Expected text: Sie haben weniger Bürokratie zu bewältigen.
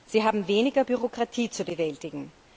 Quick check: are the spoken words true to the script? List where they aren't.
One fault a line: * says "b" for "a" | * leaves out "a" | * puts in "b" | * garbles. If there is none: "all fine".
all fine